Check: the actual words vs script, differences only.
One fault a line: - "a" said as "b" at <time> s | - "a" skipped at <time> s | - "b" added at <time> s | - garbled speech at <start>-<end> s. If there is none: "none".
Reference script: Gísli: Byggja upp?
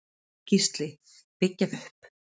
none